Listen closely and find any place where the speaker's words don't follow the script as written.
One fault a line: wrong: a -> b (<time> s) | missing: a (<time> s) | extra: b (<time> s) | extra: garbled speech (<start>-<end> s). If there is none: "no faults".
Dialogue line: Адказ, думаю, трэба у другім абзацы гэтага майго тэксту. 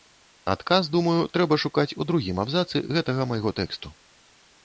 extra: шукаць (1.6 s)